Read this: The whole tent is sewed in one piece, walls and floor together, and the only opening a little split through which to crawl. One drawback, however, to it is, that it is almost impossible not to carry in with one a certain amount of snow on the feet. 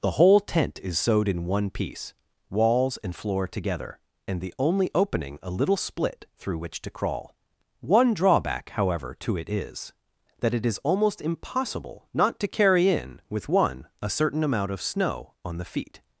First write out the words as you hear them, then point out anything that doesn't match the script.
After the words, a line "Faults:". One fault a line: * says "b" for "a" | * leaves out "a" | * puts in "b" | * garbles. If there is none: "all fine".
The whole tent is sewed in one piece, walls and floor together, and the only opening a little split through which to crawl. One drawback, however, to it is, that it is almost impossible not to carry in with one a certain amount of snow on the feet.
Faults:
all fine